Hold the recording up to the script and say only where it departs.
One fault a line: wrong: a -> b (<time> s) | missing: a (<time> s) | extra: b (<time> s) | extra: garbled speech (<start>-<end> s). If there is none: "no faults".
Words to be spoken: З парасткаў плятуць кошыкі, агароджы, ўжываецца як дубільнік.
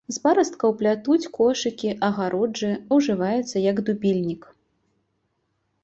no faults